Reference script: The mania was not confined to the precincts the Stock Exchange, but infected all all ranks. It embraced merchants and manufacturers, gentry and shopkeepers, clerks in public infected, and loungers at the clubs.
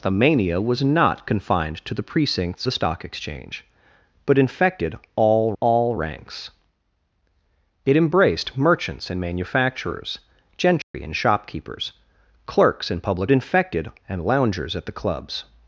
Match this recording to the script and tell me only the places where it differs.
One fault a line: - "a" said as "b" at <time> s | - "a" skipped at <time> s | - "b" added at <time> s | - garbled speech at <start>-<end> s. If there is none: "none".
none